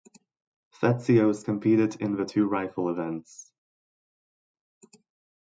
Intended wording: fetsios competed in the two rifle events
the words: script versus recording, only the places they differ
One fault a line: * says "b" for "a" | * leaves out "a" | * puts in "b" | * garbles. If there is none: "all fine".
all fine